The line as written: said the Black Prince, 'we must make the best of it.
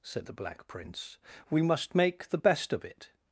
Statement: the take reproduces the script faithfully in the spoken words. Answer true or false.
true